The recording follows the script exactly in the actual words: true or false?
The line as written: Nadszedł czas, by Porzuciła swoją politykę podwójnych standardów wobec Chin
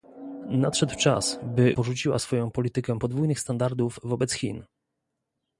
true